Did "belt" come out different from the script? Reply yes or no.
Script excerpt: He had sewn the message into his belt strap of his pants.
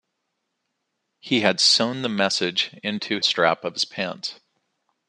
yes